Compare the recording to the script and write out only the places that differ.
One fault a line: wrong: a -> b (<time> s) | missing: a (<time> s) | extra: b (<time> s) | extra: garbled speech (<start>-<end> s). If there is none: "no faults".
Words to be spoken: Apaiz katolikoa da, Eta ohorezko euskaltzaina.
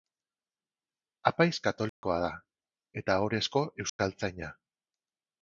no faults